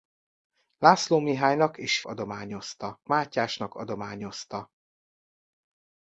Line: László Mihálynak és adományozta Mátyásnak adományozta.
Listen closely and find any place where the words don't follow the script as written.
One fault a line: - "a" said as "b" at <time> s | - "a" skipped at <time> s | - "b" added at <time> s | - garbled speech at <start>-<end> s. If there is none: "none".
none